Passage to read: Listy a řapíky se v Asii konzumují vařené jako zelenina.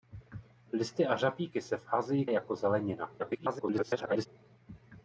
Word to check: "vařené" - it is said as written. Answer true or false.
false